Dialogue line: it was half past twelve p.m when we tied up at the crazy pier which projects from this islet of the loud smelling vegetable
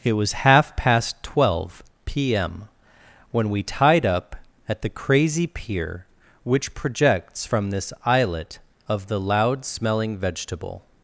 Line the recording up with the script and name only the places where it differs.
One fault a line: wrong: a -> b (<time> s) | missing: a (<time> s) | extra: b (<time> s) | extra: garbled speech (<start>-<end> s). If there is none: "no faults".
no faults